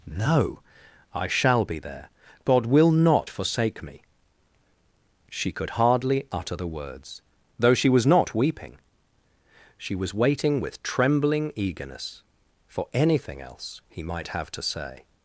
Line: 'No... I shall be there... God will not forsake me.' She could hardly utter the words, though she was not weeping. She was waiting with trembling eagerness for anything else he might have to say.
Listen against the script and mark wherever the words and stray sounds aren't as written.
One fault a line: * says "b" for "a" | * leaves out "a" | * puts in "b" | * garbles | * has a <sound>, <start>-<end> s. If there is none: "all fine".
all fine